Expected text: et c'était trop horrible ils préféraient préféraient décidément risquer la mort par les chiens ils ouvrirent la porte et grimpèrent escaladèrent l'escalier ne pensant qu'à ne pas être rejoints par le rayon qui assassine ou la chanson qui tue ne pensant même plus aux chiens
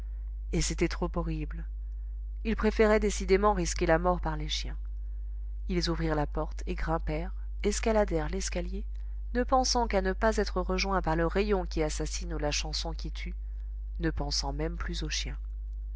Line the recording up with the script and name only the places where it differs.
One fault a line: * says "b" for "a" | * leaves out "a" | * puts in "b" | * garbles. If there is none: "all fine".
* leaves out "préféraient"